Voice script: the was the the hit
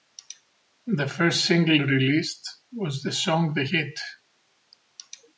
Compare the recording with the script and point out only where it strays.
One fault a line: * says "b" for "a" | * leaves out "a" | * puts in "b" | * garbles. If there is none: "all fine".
* puts in "first single released"
* puts in "song"